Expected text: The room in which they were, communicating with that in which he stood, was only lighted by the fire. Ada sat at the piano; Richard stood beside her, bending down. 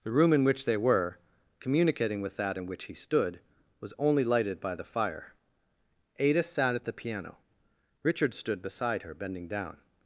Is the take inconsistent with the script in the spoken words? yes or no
no